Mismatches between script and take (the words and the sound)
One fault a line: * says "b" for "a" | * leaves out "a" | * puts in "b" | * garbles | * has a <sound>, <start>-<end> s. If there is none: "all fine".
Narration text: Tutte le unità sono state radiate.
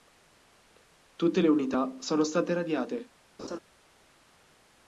* has a laugh, 3.4-3.6 s